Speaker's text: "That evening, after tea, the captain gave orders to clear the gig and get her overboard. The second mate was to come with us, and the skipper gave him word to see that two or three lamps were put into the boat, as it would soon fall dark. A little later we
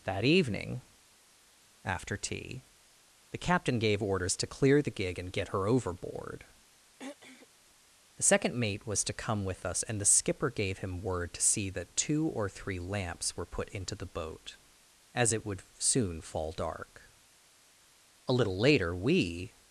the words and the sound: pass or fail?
fail